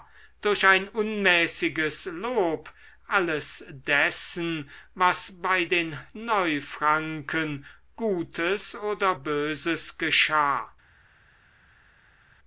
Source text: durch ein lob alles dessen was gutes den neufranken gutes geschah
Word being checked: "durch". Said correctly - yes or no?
yes